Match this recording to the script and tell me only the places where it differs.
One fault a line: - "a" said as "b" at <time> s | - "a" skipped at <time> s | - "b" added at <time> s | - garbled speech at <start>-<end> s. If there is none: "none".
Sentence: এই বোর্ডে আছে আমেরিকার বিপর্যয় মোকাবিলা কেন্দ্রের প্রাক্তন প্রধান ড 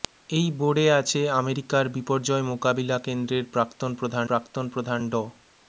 - "প্রাক্তন প্রধান" added at 4.3 s